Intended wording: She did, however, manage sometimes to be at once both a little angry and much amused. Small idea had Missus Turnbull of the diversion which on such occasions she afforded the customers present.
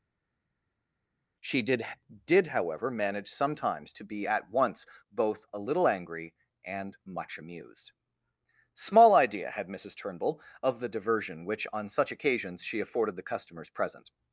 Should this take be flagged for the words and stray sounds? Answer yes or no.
yes